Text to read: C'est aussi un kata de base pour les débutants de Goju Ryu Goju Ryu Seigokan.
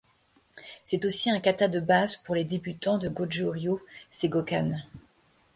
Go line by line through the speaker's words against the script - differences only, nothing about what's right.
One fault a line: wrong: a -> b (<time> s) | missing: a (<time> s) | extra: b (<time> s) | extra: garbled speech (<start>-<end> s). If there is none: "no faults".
missing: Goju Ryu (3.8 s)